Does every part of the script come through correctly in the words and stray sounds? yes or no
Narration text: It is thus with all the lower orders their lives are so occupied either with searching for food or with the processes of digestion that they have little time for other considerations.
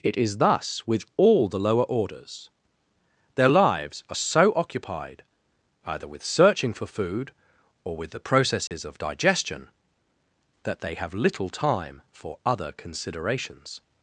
no